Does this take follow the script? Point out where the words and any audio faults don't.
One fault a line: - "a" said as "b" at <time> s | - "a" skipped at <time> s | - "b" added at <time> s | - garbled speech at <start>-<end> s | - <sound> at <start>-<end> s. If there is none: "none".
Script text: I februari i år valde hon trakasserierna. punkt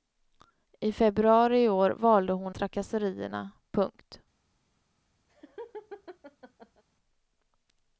- laugh at 5.3-6.8 s